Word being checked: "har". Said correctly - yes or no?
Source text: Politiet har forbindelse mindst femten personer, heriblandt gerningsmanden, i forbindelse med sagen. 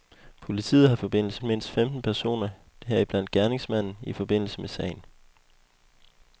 yes